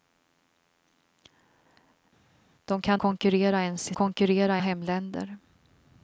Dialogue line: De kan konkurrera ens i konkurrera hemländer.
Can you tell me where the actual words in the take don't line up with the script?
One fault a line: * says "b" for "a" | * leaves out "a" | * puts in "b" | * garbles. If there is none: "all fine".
all fine